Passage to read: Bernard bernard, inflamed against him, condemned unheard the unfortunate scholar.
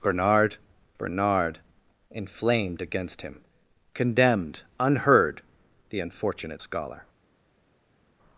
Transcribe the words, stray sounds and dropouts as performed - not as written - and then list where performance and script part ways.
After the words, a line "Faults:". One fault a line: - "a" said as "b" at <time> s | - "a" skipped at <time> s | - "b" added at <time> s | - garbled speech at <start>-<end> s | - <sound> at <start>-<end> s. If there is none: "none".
Bernard bernard, inflamed against him, condemned unheard the unfortunate scholar.
Faults:
none